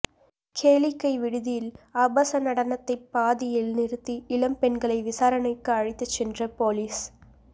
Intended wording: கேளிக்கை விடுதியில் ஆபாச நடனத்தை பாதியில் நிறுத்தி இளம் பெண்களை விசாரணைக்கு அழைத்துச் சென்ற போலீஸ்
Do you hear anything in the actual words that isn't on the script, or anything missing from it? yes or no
no